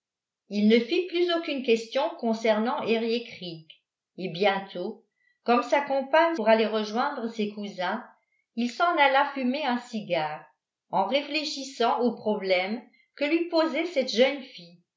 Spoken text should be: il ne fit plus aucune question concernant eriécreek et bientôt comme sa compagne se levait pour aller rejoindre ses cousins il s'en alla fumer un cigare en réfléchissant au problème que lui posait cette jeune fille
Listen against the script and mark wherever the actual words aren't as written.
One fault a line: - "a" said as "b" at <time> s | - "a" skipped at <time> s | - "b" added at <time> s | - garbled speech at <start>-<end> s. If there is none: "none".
- "se levait" skipped at 6.3 s